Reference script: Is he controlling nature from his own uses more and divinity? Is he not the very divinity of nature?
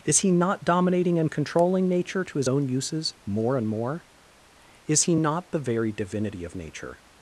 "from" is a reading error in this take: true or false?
true